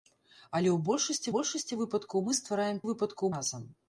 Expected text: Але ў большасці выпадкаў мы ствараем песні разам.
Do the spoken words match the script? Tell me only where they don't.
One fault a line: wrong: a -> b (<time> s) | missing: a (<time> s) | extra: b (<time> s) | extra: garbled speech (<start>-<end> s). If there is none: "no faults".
extra: большасці (1.3 s)
wrong: песні -> выпадкаў (2.9 s)